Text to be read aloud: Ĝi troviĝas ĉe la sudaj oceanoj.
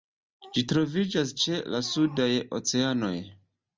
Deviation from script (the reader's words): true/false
false